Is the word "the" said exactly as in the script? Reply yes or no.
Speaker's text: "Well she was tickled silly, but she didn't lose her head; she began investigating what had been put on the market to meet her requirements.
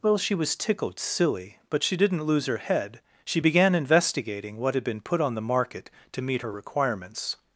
yes